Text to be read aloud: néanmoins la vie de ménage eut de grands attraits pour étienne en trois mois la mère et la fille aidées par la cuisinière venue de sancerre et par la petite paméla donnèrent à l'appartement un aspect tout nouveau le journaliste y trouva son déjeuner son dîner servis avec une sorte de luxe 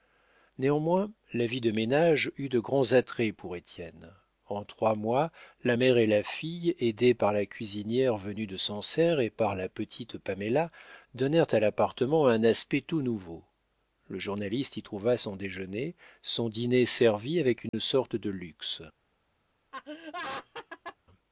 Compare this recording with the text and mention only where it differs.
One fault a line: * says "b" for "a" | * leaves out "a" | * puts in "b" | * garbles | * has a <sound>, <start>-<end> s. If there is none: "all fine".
* has a dropout, 17.7-17.7 s
* has a laugh, 19.7-21.0 s